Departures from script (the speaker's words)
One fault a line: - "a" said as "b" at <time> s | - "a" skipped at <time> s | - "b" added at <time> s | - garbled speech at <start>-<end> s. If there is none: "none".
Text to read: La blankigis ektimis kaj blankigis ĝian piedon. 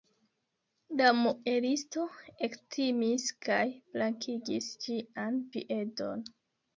- "blankigis" said as "muelisto" at 1.2 s